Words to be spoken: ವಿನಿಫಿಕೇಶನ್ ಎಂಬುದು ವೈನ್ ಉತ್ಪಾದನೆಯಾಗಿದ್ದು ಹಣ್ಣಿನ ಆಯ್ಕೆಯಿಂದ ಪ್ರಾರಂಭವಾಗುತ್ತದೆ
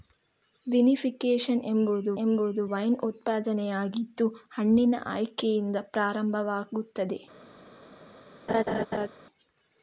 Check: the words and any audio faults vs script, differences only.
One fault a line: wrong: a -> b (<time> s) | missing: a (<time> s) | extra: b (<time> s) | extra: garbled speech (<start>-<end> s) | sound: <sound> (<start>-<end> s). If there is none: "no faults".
extra: ಎಂಬುದು (2.1 s)
sound: laugh (8.5-9.1 s)